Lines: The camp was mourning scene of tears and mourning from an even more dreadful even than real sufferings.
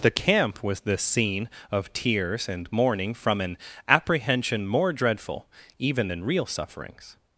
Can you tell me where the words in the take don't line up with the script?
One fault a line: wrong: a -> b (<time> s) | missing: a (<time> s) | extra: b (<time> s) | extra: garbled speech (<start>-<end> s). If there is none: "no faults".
wrong: mourning -> the (0.8 s)
wrong: even -> apprehension (3.9 s)